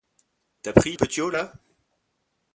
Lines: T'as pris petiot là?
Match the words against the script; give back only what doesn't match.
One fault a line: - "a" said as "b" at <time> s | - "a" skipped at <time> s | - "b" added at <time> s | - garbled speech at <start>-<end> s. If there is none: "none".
none